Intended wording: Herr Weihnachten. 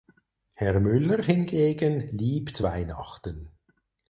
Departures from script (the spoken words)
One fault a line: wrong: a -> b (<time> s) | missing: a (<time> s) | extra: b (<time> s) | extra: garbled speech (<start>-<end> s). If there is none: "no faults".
extra: Müller hingegen liebt (0.8 s)